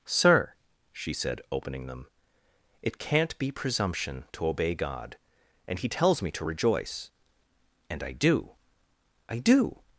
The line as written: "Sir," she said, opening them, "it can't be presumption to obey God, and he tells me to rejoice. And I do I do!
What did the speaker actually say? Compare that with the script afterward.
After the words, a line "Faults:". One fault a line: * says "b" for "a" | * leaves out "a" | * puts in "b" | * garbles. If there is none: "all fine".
"Sir," she said, opening them, "it can't be presumption to obey God, and he tells me to rejoice. And I do I do!
Faults:
all fine